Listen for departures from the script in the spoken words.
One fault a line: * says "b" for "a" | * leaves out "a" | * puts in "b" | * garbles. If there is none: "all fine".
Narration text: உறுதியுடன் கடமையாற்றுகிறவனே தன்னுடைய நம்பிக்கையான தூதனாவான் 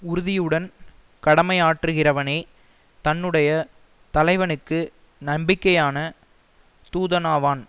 * puts in "தலைவனுக்கு"